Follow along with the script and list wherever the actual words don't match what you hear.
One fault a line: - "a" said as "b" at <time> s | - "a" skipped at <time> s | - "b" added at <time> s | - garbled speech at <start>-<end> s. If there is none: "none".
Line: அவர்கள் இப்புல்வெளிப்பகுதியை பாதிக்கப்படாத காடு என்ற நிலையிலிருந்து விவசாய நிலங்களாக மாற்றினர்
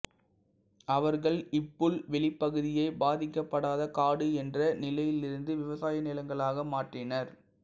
none